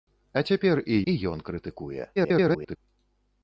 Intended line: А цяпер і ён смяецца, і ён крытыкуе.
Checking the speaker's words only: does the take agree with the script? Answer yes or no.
no